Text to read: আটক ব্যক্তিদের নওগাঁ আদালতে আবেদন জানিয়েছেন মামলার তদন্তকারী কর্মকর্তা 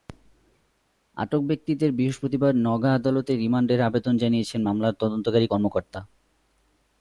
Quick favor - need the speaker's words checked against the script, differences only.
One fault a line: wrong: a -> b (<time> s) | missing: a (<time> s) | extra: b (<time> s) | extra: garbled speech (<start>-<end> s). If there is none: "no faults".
extra: বৃহস্পতিবার (1.9 s)
extra: রিমান্ডের (3.4 s)